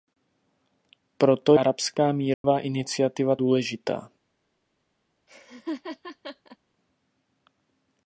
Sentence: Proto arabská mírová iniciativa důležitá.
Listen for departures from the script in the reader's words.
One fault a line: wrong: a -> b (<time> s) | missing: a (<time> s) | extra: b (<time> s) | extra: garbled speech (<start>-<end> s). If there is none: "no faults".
no faults